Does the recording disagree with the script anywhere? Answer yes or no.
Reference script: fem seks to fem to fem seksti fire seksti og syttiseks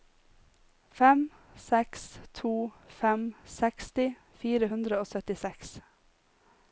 yes